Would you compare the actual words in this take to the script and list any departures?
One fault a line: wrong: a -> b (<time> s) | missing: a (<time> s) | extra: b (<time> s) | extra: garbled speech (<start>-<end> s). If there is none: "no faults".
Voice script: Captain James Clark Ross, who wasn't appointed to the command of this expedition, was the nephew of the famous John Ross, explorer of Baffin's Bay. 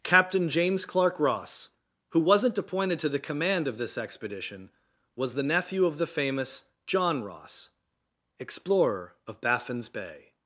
no faults